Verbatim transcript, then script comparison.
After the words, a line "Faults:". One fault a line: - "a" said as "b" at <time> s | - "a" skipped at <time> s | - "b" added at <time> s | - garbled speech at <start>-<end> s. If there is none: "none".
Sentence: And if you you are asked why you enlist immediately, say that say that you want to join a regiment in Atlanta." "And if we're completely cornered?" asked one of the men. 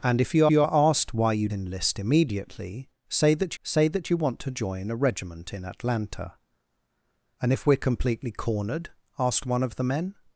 And if you you are asked why you enlist immediately, say that say that you want to join a regiment in Atlanta." "And if we're completely cornered?" asked one of the men.
Faults:
none